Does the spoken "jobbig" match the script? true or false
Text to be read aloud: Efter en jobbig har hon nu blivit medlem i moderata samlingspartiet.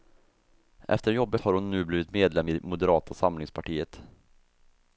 true